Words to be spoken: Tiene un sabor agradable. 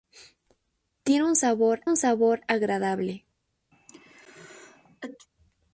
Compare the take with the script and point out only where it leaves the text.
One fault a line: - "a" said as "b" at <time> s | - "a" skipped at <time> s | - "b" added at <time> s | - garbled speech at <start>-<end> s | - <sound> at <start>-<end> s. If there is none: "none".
- "un sabor" added at 1.9 s
- sneeze at 3.7-5.3 s